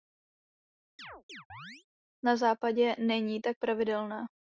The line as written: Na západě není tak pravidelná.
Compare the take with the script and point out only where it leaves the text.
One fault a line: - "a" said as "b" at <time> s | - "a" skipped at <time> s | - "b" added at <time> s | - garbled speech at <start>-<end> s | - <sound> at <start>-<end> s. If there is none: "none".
- chirp at 1.0-1.9 s